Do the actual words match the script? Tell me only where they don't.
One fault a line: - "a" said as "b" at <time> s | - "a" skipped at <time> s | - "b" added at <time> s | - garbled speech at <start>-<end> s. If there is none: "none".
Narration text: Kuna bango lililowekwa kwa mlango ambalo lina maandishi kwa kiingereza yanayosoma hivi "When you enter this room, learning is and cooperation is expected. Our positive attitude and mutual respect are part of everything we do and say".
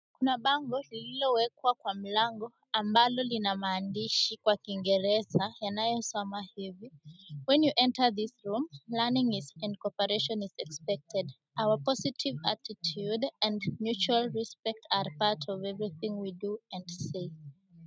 none